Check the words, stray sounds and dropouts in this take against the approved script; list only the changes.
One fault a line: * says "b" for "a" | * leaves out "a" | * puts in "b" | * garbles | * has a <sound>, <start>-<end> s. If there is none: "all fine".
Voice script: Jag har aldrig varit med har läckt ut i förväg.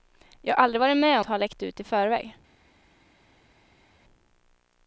all fine